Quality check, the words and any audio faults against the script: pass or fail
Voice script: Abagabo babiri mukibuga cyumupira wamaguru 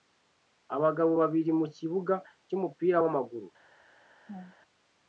fail